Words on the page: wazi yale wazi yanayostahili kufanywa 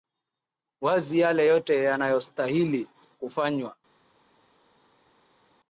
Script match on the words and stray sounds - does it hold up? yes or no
no